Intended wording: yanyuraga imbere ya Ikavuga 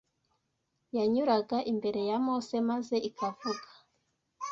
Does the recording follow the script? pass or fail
fail